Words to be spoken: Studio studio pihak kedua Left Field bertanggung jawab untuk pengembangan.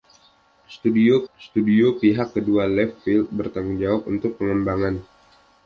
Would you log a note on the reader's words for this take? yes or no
no